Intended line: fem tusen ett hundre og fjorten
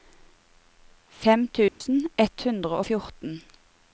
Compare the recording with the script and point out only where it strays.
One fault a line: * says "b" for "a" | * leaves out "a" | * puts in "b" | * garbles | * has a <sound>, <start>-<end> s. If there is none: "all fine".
* has a dropout, 1.7-1.8 s